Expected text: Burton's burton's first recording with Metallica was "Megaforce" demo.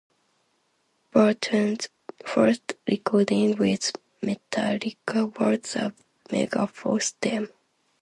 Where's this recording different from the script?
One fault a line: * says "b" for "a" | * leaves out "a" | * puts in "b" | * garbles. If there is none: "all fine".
* leaves out "burton's"
* puts in "the"